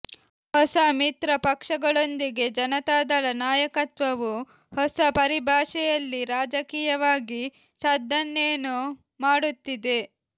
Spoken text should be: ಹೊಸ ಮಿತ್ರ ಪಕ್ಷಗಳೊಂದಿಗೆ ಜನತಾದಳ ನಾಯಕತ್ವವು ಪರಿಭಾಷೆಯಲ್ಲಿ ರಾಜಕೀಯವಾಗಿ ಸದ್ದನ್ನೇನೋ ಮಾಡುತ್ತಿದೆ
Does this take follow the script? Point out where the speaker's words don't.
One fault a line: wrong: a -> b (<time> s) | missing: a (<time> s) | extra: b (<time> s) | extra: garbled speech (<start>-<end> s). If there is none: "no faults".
extra: ಹೊಸ (4.7 s)